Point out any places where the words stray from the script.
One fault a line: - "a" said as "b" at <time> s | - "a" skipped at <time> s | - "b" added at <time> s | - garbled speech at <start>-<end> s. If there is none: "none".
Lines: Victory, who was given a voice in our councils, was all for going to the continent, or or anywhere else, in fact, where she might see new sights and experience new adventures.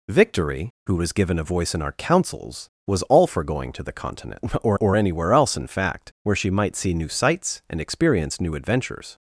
none